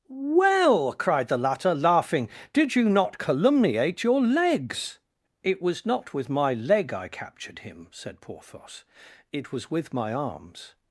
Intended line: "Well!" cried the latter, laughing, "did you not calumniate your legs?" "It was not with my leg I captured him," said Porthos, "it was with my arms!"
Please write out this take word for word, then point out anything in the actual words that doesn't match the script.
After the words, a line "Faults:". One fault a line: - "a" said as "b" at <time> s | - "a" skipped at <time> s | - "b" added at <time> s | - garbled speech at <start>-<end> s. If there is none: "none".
"Well!" cried the latter, laughing, "did you not calumniate your legs?" "It was not with my leg I captured him," said Porthos, "it was with my arms!"
Faults:
none